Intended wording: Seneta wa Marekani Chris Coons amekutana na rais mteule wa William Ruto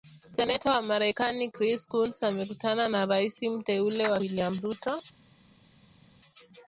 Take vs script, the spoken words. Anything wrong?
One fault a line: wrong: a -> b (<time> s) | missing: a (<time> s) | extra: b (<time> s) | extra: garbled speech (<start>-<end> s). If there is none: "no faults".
no faults